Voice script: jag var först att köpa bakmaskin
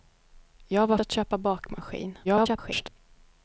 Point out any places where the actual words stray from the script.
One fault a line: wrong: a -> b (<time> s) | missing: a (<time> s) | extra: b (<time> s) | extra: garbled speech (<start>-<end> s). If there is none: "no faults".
missing: först (1.0 s)
extra: garbled speech (2.2-2.9 s)